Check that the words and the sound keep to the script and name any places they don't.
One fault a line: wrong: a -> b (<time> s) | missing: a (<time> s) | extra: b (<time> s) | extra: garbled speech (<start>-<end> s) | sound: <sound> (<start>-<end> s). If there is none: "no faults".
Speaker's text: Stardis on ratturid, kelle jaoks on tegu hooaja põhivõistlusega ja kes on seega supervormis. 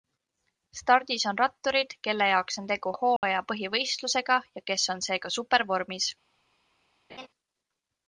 sound: dropout (3.2-3.2 s)
sound: laugh (7.1-7.3 s)